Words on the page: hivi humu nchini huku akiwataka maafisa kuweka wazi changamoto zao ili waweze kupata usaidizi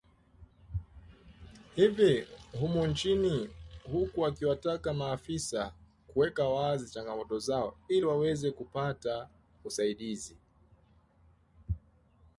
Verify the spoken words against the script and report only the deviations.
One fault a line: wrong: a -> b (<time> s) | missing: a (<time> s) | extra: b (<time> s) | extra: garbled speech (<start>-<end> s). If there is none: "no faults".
no faults